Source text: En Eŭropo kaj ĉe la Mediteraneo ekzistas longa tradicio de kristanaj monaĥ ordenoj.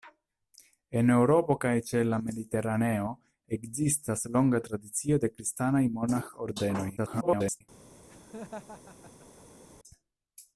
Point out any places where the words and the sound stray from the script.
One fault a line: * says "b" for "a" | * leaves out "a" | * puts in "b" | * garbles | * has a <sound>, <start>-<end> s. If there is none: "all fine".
* garbles
* has a laugh, 8.1-9.6 s